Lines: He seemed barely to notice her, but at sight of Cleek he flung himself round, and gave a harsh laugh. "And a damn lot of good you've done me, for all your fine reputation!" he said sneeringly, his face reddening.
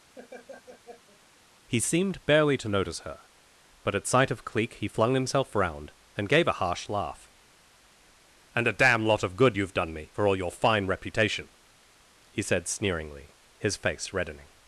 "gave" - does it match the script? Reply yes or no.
yes